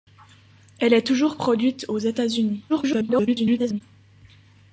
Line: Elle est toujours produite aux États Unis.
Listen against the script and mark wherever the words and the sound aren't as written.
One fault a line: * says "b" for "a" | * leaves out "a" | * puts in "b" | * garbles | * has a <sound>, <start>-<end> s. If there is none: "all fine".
* garbles